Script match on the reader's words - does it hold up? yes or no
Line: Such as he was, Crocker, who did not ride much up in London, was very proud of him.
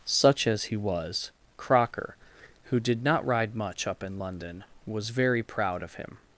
yes